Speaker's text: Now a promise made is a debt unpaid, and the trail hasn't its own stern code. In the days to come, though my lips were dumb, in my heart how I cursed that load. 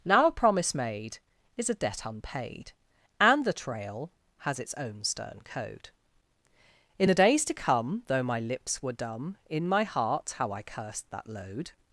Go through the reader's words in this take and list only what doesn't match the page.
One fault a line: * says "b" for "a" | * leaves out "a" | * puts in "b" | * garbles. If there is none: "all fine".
* says "has" for "hasn't"